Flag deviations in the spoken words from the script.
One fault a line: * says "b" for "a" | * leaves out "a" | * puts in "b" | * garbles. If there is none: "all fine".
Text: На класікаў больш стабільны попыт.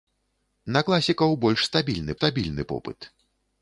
* puts in "стабільны"